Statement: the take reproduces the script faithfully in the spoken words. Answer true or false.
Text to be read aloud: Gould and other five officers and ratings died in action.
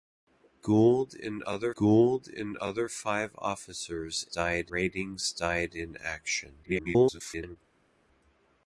false